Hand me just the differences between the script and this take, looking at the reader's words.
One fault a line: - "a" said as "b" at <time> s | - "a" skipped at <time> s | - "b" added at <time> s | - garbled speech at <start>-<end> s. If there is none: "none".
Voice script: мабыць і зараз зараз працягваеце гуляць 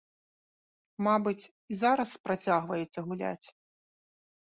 - "зараз" skipped at 2.1 s